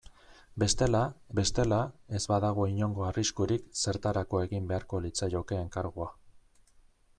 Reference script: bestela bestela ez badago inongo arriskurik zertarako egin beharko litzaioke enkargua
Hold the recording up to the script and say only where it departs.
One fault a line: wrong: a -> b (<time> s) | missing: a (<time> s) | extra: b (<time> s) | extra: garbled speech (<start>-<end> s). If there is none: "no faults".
no faults